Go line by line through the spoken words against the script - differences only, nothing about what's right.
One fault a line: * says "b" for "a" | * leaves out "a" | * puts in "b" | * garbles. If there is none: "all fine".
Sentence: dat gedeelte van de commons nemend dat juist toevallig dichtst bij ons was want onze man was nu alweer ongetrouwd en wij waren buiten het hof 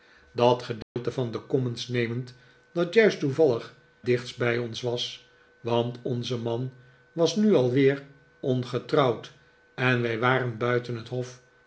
all fine